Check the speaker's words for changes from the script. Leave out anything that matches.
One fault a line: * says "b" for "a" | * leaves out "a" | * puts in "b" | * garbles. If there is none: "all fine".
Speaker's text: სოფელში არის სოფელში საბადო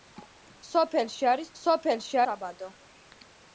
all fine